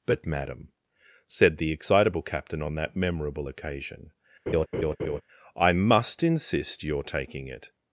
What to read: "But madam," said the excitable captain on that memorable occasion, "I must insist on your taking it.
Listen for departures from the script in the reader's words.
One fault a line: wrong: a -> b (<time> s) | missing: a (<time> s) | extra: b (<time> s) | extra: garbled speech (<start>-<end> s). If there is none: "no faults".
missing: on (6.8 s)